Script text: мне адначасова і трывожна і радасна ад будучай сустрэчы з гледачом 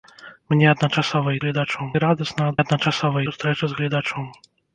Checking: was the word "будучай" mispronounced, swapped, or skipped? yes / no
yes